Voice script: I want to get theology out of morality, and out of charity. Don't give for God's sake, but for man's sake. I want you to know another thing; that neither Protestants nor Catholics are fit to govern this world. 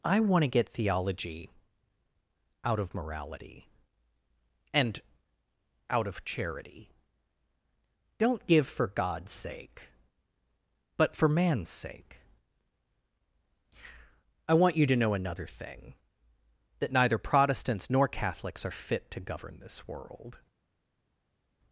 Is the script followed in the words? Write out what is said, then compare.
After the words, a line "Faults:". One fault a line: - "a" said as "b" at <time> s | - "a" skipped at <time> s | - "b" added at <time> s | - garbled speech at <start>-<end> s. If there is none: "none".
I want to get theology out of morality, and out of charity. Don't give for God's sake, but for man's sake. I want you to know another thing; that neither Protestants nor Catholics are fit to govern this world.
Faults:
none